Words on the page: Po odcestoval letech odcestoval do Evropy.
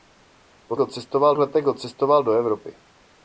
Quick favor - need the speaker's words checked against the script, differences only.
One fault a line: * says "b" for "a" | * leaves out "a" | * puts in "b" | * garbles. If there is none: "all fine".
all fine